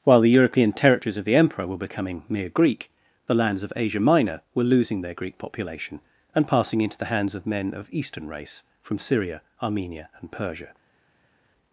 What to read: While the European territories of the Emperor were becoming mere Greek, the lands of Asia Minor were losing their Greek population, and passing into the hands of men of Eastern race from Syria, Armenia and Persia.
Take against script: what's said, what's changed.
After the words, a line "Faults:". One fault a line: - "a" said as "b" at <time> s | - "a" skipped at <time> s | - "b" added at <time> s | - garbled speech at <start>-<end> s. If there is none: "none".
While the European territories of the Emperor were becoming mere Greek, the lands of Asia Minor were losing their Greek population, and passing into the hands of men of Eastern race from Syria, Armenia and Persia.
Faults:
none